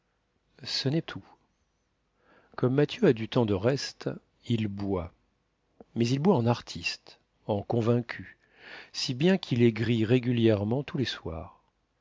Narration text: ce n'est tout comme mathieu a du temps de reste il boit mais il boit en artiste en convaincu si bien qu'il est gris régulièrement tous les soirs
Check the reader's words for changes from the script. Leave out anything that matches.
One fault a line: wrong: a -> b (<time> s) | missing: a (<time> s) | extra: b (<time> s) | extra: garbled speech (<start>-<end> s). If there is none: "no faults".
no faults